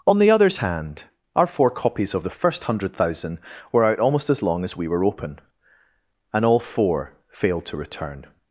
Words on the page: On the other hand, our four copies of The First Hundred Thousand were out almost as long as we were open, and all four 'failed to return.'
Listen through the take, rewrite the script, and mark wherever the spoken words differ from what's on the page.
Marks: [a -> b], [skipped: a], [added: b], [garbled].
On the [other -> others] hand, our four copies of The First Hundred Thousand were out almost as long as we were open, and all four 'failed to return.'